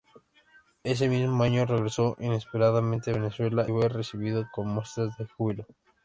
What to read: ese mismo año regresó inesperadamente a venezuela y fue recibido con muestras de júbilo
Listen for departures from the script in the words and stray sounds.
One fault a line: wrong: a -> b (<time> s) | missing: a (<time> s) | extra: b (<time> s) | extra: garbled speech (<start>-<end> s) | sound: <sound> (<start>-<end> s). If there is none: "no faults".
missing: y (3.7 s)